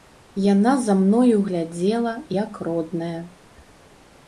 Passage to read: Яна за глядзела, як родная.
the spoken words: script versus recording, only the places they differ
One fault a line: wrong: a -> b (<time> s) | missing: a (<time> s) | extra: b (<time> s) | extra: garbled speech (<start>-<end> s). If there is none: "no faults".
extra: мною (1.0 s)